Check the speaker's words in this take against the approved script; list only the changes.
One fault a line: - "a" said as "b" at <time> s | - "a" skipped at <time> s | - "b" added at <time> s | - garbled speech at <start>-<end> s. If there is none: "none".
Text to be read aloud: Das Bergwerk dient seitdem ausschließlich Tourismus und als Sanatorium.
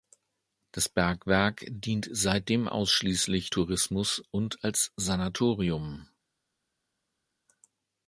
none